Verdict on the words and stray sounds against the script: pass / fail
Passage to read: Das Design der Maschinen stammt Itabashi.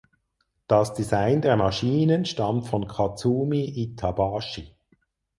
fail